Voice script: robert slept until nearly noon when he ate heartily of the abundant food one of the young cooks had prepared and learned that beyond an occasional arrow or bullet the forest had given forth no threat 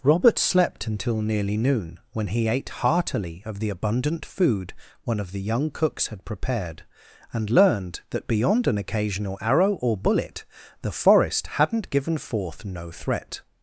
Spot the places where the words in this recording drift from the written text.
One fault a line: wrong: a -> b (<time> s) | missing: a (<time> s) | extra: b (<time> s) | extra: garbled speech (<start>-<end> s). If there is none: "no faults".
wrong: had -> hadn't (11.5 s)